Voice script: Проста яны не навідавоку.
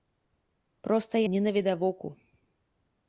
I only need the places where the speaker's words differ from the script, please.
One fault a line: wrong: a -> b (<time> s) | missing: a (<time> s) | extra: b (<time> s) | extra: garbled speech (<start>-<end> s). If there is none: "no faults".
missing: яны (1.1 s)